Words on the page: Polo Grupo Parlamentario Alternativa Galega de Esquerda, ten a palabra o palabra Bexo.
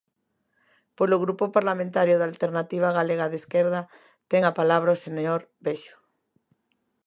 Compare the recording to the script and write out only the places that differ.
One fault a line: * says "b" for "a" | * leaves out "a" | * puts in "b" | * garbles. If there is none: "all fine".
* puts in "da"
* says "señor" for "palabra"